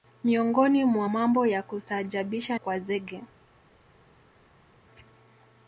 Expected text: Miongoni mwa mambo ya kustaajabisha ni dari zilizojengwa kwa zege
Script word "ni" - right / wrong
wrong